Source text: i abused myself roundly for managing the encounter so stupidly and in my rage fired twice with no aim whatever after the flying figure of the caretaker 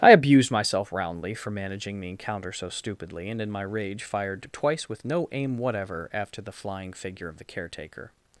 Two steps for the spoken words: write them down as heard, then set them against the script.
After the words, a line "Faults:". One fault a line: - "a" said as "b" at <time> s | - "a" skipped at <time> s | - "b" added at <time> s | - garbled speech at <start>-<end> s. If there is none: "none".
i abused myself roundly for managing the encounter so stupidly and in my rage fired twice with no aim whatever after the flying figure of the caretaker
Faults:
none